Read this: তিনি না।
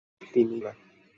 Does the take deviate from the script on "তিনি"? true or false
false